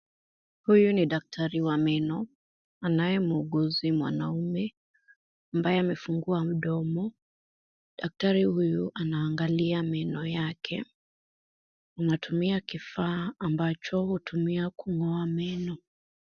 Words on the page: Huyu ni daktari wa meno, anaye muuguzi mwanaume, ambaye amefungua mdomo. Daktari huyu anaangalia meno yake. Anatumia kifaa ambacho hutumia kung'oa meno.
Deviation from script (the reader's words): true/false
false